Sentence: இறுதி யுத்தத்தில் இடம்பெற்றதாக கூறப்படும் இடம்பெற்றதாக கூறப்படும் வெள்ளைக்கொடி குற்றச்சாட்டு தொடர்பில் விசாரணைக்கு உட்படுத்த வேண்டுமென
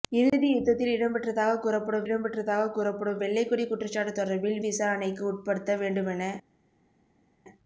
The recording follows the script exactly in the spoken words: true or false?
true